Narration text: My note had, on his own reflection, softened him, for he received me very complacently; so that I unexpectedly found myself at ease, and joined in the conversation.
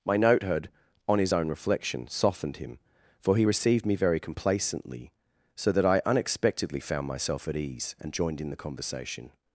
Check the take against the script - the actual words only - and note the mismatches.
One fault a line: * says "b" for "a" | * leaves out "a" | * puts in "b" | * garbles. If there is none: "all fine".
all fine